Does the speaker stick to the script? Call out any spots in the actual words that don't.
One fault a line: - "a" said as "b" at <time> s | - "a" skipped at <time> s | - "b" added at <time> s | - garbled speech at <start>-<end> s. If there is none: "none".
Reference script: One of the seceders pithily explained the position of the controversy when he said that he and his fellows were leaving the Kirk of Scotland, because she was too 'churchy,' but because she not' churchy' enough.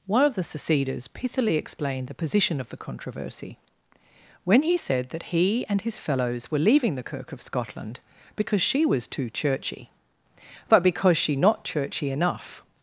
none